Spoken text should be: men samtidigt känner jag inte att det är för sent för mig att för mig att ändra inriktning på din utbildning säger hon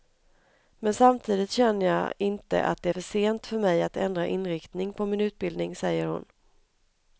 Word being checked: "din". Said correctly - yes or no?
no